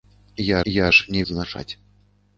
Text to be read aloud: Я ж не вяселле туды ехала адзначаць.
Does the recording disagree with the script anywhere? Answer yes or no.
yes